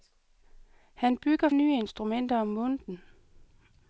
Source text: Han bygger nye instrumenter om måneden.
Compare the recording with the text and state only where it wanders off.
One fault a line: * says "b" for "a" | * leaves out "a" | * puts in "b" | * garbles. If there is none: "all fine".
all fine